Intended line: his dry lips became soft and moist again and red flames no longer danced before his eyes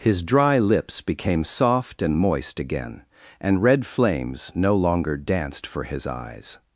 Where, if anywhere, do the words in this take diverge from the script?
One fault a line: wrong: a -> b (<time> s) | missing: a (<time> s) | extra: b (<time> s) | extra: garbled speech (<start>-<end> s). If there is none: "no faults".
wrong: before -> for (5.7 s)